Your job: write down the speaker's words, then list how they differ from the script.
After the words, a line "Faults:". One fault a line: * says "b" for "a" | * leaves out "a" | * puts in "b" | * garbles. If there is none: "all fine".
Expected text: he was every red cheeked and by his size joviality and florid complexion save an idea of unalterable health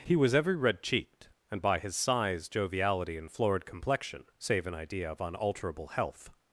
he was every red cheeked and by his size joviality and florid complexion save an idea of unalterable health
Faults:
all fine